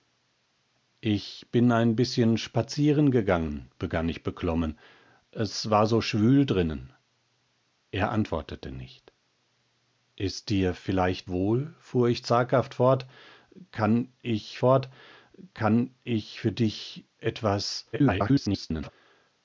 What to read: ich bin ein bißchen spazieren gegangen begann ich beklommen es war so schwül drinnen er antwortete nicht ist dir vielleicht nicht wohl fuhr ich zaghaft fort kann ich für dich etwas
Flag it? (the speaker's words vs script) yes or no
yes